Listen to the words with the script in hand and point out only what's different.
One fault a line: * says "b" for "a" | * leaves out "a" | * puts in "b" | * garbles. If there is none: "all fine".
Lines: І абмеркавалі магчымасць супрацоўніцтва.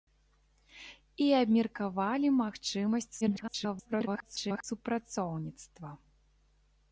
* garbles